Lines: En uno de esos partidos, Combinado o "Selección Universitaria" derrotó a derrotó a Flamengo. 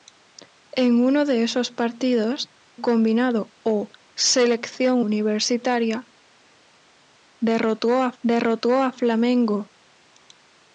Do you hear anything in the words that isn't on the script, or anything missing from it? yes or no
no